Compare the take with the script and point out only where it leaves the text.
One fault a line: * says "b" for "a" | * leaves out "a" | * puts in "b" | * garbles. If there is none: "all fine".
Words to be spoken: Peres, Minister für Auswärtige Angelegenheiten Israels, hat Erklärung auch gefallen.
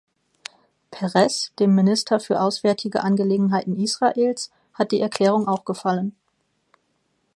* puts in "dem"
* puts in "die"